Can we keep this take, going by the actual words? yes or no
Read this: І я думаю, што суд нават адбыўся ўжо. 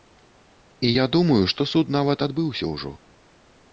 yes